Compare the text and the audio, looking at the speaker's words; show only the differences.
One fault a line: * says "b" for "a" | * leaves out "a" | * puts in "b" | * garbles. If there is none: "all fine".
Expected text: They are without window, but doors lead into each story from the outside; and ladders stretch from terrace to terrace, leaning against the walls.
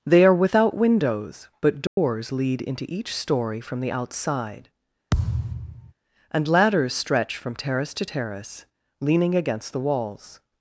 * says "windows" for "window"